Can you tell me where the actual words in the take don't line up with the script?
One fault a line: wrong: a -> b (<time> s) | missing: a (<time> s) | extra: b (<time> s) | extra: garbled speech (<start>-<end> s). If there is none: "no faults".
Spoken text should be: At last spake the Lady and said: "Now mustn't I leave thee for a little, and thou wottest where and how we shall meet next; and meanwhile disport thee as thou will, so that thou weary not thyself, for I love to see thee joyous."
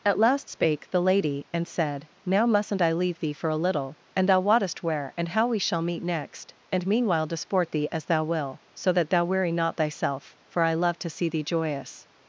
no faults